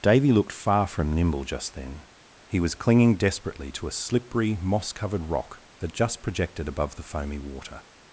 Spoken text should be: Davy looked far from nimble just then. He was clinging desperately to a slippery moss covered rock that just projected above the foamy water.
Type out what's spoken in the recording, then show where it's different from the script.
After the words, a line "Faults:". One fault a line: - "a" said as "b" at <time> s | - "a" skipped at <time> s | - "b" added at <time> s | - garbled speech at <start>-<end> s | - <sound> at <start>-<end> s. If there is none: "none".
Davy looked far from nimble just then. He was clinging desperately to a slippery moss covered rock that just projected above the foamy water.
Faults:
none